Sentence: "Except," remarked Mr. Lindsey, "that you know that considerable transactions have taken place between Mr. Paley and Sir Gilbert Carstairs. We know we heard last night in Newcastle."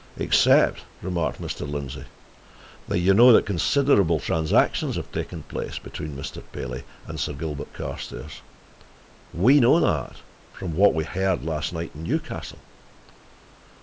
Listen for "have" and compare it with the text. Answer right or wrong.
right